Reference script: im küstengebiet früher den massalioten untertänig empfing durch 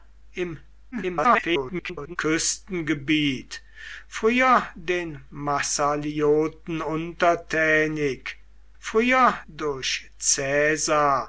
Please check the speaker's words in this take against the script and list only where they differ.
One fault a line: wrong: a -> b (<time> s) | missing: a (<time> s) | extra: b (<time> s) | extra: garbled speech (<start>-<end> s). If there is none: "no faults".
extra: garbled speech (0.9-2.2 s)
wrong: empfing -> früher (8.8 s)